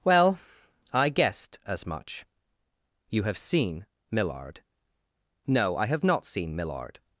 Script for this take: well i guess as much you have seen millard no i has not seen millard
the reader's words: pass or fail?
fail